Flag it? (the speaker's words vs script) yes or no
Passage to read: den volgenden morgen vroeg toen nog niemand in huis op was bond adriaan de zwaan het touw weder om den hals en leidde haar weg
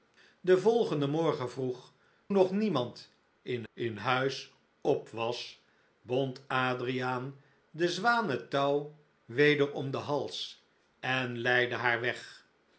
yes